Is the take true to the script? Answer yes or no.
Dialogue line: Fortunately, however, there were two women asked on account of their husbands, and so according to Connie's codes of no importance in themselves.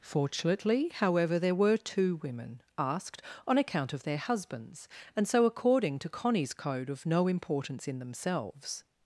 no